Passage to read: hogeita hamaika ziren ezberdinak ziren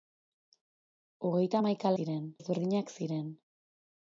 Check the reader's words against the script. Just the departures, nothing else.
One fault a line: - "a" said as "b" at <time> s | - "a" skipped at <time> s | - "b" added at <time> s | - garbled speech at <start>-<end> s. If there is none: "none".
none